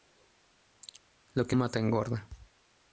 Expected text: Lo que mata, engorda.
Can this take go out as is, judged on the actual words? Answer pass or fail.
pass